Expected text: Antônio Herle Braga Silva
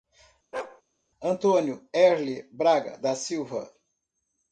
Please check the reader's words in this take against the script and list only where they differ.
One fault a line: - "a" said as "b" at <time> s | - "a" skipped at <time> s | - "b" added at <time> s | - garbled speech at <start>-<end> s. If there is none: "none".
- "da" added at 3.0 s